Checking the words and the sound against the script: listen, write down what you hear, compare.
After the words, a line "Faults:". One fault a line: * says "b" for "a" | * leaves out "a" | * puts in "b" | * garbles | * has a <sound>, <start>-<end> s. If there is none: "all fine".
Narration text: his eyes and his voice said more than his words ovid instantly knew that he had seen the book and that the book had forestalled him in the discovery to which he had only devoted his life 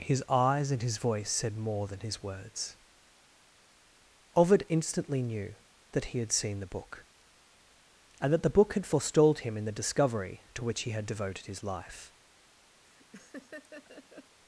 his eyes and his voice said more than his words ovid instantly knew that he had seen the book and that the book had forestalled him in the discovery to which he had devoted his life
Faults:
* leaves out "only"
* has a laugh, 12.8-14.4 s